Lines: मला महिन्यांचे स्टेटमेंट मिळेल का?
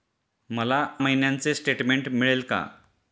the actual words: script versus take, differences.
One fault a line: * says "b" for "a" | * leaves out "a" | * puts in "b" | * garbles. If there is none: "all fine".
all fine